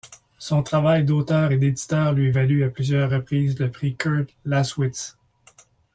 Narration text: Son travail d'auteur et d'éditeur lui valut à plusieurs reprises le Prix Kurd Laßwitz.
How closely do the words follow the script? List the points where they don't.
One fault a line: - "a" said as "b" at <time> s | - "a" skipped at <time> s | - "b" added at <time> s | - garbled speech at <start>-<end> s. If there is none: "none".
none